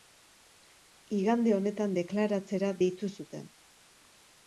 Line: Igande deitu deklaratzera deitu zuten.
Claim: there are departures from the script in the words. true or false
true